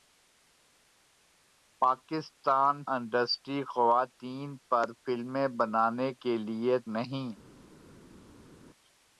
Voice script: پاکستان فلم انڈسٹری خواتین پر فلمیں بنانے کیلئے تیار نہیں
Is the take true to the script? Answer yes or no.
no